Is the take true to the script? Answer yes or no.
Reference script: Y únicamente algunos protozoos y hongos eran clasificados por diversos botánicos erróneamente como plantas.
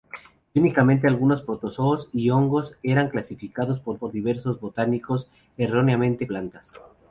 no